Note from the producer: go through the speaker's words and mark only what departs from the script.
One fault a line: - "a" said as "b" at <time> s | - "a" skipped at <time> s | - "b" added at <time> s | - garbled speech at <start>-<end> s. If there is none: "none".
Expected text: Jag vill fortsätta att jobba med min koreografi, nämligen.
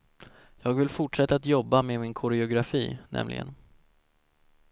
none